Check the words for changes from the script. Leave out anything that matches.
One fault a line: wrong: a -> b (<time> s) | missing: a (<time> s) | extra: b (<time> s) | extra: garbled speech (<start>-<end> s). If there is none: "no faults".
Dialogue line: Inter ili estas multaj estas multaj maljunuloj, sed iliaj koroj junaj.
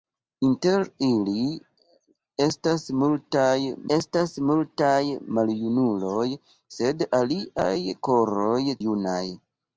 no faults